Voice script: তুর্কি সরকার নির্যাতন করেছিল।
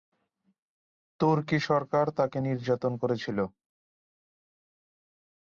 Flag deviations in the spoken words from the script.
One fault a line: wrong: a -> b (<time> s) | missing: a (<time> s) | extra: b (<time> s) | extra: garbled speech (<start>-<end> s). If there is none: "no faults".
extra: তাকে (2.2 s)